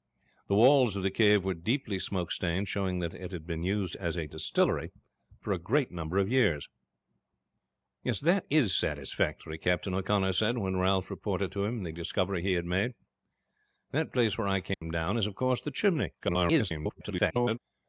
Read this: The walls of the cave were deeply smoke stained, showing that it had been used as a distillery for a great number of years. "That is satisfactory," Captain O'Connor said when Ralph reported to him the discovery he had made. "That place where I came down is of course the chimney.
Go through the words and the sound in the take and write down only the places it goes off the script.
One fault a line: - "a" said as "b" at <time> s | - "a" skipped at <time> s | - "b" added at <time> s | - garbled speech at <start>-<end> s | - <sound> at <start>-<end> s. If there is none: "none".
- dropout at 14.7-14.8 s
- garbled speech at 16.2-17.6 s